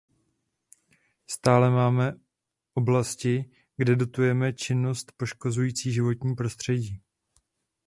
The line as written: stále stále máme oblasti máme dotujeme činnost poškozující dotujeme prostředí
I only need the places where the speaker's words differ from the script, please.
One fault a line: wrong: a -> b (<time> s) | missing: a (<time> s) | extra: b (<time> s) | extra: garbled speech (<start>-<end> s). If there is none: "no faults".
missing: stále (1.7 s)
wrong: máme -> kde (3.8 s)
wrong: dotujeme -> životní (5.9 s)